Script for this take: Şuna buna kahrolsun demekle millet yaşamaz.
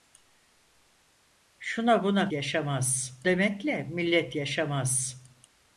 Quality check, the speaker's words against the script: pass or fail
fail